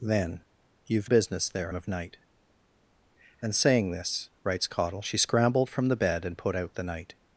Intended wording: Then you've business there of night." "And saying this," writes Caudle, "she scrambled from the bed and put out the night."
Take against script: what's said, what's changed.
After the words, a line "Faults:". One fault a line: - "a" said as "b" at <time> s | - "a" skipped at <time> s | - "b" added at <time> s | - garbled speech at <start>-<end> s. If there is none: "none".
Then you've business there of night." "And saying this," writes Caudle, "she scrambled from the bed and put out the night."
Faults:
none